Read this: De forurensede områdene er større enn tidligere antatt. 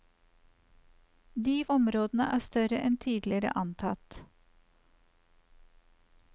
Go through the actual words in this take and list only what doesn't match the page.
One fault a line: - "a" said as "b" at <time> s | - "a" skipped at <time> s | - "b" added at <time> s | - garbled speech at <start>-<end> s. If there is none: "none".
- "forurensede" skipped at 1.6 s